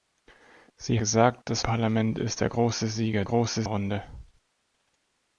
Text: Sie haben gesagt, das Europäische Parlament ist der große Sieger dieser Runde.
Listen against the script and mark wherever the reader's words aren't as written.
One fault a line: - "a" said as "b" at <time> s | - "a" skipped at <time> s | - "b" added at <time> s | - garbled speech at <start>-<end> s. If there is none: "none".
- "haben" skipped at 1.0 s
- "Europäische" skipped at 1.6 s
- "dieser" said as "große" at 3.2 s